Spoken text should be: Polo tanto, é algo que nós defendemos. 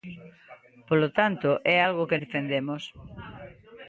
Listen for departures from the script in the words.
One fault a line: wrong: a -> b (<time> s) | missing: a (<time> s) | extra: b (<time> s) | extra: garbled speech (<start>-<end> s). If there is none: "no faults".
missing: nós (2.2 s)